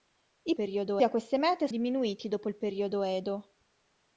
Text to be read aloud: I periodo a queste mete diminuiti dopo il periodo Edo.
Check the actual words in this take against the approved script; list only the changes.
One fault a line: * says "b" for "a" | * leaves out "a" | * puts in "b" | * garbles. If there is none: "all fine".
all fine